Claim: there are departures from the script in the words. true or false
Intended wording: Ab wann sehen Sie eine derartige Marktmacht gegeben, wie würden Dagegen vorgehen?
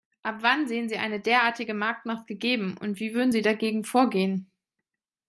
true